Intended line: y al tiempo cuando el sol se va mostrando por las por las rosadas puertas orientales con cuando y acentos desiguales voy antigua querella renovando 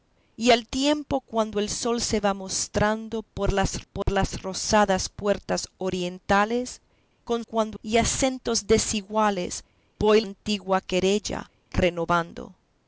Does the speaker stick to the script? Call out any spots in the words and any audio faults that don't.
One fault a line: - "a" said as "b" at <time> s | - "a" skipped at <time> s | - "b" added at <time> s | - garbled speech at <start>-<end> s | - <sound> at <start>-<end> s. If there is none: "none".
- dropout at 4.0-4.1 s